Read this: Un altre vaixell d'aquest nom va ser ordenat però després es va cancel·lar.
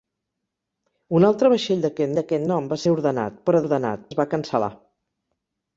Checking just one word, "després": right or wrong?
wrong